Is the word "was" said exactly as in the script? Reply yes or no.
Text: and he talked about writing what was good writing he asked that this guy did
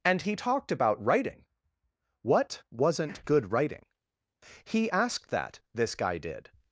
no